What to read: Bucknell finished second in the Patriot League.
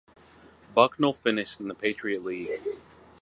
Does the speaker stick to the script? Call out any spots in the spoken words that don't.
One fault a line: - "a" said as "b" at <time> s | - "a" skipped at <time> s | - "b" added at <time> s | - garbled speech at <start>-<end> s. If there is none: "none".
- "second" skipped at 1.6 s